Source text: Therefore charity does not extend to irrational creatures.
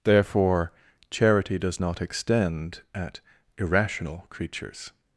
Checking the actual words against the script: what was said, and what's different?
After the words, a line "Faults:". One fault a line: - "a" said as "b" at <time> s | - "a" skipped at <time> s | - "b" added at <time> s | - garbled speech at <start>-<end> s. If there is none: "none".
Therefore charity does not extend at irrational creatures.
Faults:
- "to" said as "at" at 2.9 s